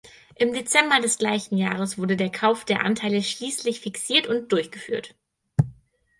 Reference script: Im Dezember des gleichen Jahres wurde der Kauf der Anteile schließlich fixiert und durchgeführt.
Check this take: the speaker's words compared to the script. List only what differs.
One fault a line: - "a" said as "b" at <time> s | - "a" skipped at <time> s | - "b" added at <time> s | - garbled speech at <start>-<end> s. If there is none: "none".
none